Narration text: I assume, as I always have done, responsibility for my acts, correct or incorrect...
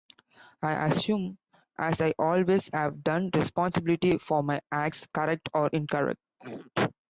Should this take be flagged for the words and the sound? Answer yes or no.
yes